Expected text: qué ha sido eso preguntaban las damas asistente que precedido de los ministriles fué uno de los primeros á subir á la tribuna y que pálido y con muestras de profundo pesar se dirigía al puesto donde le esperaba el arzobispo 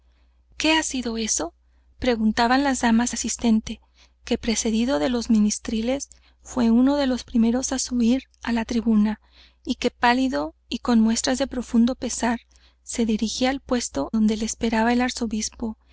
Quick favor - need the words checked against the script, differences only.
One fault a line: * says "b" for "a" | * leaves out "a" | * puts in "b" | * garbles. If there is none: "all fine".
all fine